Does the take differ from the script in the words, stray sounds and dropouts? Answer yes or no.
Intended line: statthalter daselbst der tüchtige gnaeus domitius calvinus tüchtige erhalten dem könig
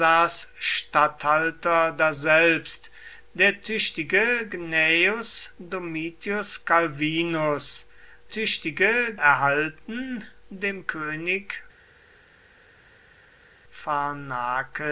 no